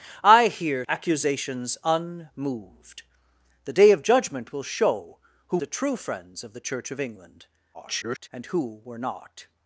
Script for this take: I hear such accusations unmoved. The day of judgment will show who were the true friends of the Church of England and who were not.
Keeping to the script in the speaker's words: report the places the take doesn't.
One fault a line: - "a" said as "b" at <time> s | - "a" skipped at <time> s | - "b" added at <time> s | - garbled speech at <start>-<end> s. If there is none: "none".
- "such" skipped at 0.8 s
- "were" skipped at 5.6 s
- garbled speech at 7.7-8.3 s